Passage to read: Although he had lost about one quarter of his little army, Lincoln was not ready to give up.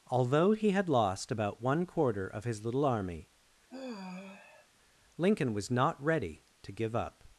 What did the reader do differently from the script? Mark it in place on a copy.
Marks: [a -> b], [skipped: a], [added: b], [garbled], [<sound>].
Although he had lost about one quarter of his little army, [sigh] Lincoln was not ready to give up.